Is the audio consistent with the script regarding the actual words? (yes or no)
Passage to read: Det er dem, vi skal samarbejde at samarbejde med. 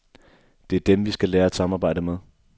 no